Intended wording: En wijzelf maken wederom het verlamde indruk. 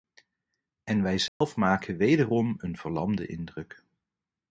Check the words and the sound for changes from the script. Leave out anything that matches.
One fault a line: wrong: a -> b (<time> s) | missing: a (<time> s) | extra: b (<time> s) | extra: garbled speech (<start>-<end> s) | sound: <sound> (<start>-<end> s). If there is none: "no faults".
sound: dropout (1.3-1.4 s)
wrong: het -> een (2.6 s)